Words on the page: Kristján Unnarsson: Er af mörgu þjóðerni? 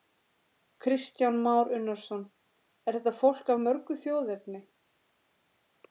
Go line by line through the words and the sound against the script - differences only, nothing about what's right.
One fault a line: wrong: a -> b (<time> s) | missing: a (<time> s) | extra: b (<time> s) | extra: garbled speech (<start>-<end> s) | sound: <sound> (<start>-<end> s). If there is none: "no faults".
extra: Már (1.4 s)
extra: þetta fólk (3.0 s)